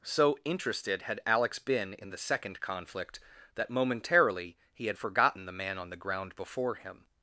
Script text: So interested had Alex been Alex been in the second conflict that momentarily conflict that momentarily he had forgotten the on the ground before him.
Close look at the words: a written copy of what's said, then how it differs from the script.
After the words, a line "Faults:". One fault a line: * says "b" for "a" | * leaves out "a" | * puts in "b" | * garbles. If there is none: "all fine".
So interested had Alex been in the second conflict that momentarily he had forgotten the man on the ground before him.
Faults:
* leaves out "Alex been"
* leaves out "conflict that momentarily"
* puts in "man"